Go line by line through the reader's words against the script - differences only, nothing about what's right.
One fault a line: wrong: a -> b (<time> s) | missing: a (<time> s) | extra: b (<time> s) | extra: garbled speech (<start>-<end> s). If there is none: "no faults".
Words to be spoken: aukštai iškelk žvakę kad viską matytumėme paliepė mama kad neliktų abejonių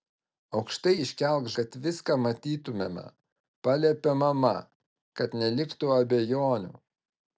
missing: žvakę (1.5 s)